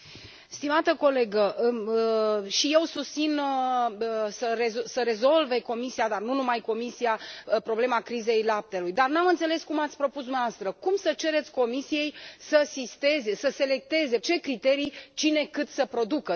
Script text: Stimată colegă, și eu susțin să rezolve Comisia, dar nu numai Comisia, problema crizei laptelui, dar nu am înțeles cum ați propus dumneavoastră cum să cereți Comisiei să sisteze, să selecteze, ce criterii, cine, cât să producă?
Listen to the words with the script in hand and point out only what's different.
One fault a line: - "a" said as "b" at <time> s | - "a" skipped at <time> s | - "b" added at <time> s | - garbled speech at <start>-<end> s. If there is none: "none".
none